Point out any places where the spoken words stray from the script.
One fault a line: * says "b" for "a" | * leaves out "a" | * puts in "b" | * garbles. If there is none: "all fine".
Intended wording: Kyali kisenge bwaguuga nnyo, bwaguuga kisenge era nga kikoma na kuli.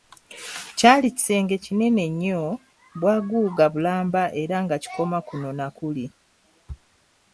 * says "kinene" for "bwaguuga"
* says "bulamba" for "kisenge"
* puts in "kuno"